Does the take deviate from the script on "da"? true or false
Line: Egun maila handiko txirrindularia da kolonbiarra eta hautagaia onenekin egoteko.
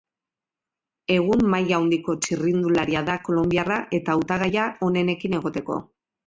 false